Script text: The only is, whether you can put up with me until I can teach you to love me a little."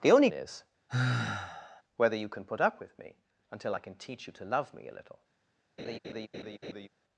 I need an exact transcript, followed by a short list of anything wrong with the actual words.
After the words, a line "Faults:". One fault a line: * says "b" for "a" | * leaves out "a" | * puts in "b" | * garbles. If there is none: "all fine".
The only is, whether you can put up with me until I can teach you to love me a little."
Faults:
all fine